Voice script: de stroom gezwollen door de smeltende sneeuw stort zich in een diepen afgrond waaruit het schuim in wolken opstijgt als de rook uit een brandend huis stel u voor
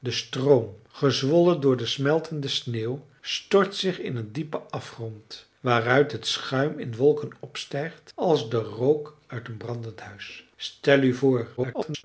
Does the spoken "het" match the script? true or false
true